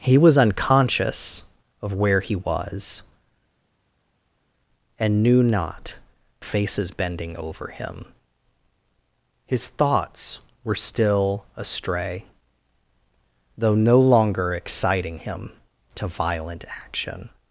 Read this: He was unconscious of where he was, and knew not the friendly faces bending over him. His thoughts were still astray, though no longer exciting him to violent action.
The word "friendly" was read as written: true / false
false